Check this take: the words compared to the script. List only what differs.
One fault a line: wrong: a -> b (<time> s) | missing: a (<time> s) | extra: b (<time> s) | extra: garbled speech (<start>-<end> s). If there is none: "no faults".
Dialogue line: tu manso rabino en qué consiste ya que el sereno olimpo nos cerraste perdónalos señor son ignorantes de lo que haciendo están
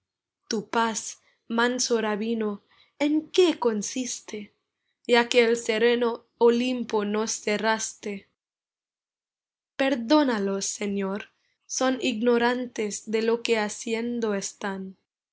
extra: paz (0.7 s)